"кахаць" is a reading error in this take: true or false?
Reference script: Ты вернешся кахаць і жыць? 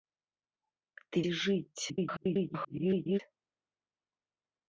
true